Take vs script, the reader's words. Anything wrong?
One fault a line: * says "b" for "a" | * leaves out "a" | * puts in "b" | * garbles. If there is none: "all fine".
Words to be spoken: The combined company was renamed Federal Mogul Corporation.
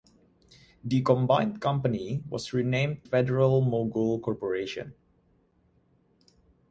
all fine